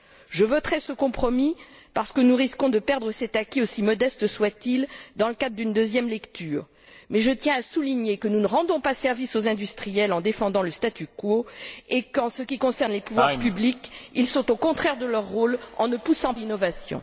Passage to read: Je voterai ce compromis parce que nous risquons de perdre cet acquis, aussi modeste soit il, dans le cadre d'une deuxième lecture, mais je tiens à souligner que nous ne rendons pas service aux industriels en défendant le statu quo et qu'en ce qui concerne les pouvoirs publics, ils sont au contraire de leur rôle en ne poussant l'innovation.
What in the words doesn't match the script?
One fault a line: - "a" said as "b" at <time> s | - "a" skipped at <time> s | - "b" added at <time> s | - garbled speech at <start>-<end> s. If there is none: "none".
none